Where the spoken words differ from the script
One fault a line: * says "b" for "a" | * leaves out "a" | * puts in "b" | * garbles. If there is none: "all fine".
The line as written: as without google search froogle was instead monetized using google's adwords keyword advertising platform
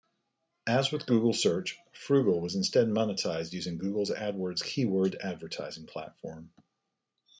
* says "with" for "without"